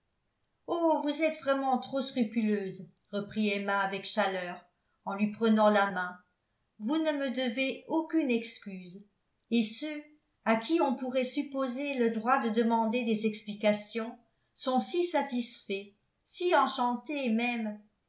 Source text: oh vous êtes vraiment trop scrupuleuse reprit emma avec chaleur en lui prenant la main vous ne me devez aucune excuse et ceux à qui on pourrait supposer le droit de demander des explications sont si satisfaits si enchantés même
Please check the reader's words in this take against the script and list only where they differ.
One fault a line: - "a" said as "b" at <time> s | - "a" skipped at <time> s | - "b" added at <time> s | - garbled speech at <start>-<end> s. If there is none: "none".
none